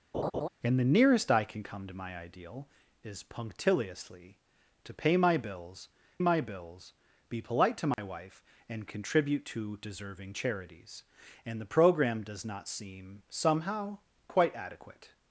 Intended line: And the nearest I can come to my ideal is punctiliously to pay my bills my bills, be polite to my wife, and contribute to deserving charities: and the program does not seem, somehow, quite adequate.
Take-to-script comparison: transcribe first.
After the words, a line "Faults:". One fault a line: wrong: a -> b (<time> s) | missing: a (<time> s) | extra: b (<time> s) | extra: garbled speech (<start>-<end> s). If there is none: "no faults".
And the nearest I can come to my ideal is punctiliously to pay my bills my bills, be polite to my wife, and contribute to deserving charities: and the program does not seem, somehow, quite adequate.
Faults:
no faults